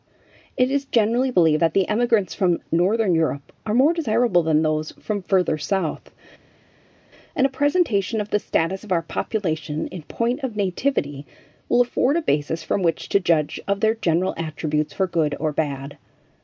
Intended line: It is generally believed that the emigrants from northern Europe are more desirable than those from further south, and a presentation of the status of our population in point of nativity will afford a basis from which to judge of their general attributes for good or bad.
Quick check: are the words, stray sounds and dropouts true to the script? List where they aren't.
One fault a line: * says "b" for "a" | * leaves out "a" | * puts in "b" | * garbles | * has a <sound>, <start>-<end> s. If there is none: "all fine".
all fine